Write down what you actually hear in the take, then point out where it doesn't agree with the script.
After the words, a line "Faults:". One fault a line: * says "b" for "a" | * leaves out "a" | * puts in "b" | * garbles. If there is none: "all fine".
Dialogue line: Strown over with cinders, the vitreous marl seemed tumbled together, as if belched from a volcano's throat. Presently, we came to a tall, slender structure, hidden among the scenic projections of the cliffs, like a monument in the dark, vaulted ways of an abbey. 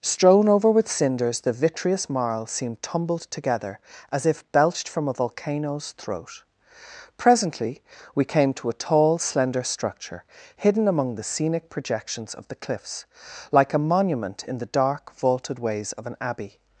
Strown over with cinders, the vitreous marl seemed tumbled together, as if belched from a volcano's throat. Presently, we came to a tall, slender structure, hidden among the scenic projections of the cliffs, like a monument in the dark, vaulted ways of an abbey.
Faults:
all fine